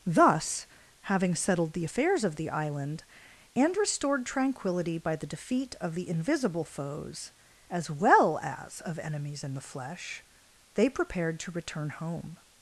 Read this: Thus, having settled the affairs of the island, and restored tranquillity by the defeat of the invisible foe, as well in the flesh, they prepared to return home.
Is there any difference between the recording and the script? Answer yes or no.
yes